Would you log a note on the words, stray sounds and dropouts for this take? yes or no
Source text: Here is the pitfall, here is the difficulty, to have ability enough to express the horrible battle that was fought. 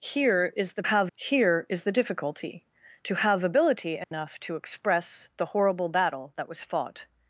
yes